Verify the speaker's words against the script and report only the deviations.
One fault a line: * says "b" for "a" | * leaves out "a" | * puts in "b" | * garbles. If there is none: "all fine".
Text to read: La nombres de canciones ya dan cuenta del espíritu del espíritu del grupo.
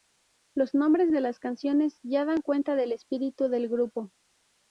* says "Los" for "La"
* puts in "las"
* leaves out "espíritu del"